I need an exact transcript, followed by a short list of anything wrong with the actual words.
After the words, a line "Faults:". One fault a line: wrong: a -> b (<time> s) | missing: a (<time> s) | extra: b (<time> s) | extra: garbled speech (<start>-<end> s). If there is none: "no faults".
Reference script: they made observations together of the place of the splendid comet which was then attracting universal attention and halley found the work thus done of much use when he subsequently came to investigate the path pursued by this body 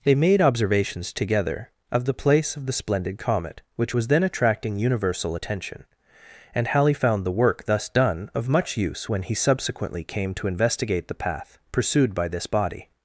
they made observations together of the place of the splendid comet which was then attracting universal attention and halley found the work thus done of much use when he subsequently came to investigate the path pursued by this body
Faults:
no faults